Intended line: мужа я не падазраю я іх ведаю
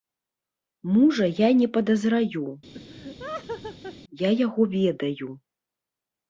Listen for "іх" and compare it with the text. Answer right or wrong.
wrong